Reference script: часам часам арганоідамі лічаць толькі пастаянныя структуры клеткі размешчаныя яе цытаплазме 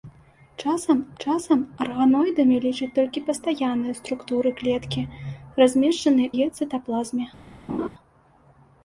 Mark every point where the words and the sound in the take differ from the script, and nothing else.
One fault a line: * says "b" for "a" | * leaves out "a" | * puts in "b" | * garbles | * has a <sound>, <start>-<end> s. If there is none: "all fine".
* has a laugh, 7.7-7.9 s